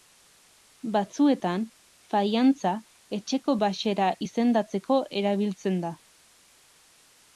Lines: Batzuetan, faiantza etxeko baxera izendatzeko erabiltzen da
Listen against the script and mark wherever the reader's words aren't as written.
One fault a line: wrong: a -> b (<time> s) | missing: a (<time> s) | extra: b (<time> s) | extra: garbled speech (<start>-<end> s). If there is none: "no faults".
no faults